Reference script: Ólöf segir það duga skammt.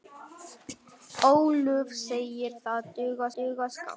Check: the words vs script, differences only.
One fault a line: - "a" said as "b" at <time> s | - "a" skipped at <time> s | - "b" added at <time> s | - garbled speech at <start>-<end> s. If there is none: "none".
- "duga" added at 3.4 s